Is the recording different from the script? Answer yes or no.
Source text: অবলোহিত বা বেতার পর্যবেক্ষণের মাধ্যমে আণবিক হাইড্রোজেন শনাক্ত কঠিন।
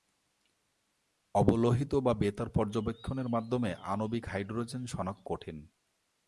no